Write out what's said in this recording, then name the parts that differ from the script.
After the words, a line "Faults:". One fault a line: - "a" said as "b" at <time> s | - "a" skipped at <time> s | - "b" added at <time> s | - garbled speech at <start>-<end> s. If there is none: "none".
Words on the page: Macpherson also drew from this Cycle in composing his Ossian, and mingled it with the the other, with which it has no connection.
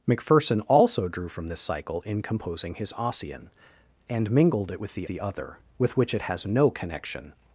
Macpherson also drew from this Cycle in composing his Ossian, and mingled it with the the other, with which it has no connection.
Faults:
none